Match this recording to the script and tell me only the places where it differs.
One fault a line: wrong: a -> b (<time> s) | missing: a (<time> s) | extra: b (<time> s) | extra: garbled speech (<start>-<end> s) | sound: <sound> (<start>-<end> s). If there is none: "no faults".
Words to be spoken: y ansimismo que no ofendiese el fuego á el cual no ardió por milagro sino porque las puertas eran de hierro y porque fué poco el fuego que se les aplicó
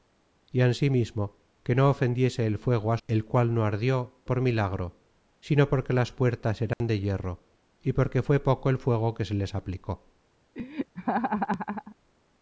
sound: dropout (6.7-6.8 s)
sound: laugh (10.5-12.0 s)